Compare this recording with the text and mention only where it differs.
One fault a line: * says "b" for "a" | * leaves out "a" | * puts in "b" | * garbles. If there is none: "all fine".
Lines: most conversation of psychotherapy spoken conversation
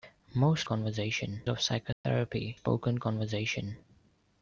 all fine